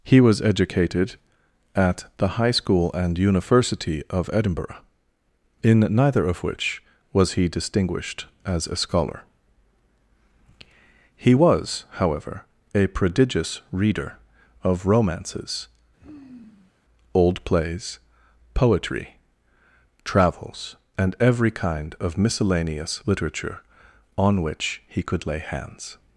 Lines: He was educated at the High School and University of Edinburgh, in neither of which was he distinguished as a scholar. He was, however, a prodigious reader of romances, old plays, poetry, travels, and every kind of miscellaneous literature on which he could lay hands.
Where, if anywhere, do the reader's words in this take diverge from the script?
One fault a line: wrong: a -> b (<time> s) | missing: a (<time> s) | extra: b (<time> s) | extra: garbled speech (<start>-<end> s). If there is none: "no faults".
no faults